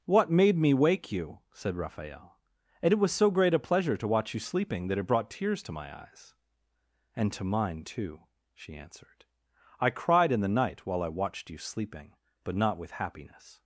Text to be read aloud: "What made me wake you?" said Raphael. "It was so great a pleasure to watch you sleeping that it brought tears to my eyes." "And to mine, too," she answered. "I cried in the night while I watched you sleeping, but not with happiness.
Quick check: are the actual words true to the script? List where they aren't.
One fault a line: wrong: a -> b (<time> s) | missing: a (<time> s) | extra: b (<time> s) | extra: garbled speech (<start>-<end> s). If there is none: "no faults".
extra: and (2.8 s)